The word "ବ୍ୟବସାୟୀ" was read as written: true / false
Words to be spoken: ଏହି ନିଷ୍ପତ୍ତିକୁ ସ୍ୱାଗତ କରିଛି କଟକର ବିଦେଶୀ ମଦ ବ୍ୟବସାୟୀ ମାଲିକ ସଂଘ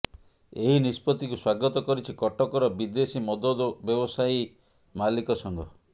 true